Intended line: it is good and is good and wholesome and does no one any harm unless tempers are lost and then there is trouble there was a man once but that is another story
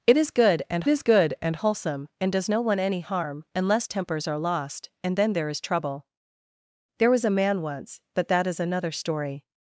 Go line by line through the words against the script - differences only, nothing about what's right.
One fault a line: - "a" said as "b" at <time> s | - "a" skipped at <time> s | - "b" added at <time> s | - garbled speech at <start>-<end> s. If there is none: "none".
none